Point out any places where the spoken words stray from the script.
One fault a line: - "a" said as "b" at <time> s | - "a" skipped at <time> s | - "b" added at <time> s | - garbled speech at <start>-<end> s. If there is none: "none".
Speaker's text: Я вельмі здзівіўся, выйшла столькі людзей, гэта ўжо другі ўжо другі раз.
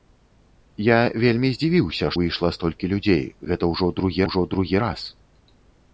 none